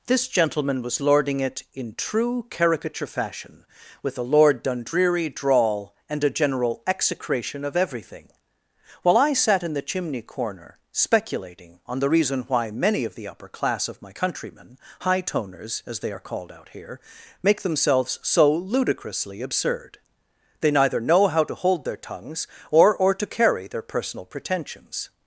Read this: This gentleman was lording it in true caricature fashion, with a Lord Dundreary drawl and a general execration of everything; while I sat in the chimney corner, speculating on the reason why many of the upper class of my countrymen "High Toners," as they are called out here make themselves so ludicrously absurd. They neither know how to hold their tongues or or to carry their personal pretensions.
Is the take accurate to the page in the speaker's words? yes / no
yes